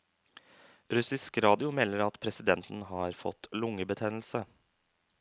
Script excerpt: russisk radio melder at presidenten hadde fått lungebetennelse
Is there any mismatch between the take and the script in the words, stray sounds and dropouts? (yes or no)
yes